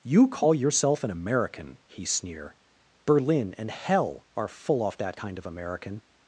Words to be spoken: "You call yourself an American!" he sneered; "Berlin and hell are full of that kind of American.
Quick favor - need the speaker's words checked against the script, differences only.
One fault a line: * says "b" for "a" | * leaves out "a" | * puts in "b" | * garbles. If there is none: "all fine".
* says "sneer" for "sneered"
* says "off" for "of"